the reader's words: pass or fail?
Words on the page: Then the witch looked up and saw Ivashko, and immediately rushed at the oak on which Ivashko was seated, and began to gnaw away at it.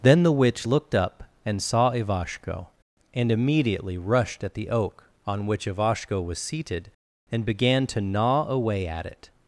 pass